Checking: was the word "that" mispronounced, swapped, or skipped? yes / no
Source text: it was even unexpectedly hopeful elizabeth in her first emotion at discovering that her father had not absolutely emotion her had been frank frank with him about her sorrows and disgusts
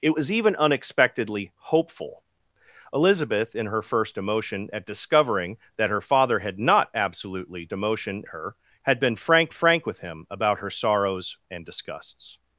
no